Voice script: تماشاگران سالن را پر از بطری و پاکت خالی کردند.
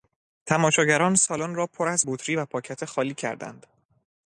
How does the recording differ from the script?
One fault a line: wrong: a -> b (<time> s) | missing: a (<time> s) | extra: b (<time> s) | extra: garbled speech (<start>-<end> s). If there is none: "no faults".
no faults